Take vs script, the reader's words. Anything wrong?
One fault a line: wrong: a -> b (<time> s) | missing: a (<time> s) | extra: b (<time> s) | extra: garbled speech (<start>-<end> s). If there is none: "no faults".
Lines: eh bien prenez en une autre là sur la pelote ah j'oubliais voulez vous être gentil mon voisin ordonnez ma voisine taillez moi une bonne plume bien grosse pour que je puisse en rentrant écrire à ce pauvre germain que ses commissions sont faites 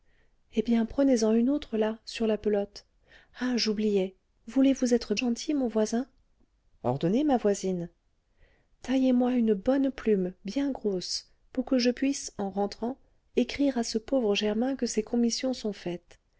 no faults